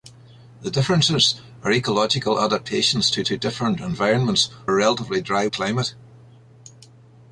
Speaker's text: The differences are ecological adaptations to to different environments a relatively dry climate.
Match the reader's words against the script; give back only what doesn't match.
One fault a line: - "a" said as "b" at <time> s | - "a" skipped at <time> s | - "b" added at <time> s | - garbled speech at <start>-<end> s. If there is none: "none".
none